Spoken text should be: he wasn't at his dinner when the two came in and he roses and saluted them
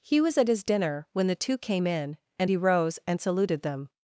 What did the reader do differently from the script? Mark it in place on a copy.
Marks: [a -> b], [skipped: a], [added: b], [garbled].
he [wasn't -> was] at his dinner when the two came in and he [roses -> rose] and saluted them